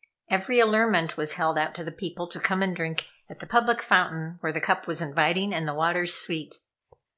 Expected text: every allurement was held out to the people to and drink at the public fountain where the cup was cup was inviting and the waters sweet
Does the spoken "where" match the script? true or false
true